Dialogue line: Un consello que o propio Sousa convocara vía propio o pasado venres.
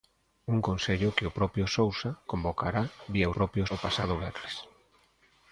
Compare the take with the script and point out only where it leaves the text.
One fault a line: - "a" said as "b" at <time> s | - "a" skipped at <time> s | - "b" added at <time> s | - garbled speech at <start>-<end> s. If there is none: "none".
none